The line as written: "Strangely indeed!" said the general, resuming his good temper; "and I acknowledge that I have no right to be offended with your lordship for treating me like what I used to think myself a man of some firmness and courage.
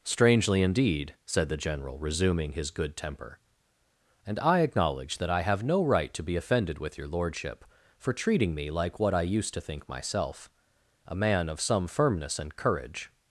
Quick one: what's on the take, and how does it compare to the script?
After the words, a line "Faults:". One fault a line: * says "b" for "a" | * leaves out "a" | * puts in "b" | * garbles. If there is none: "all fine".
"Strangely indeed!" said the general, resuming his good temper; "and I acknowledge that I have no right to be offended with your lordship for treating me like what I used to think myself a man of some firmness and courage.
Faults:
all fine